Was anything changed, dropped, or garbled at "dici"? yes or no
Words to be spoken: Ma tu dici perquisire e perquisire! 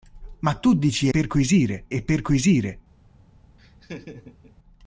no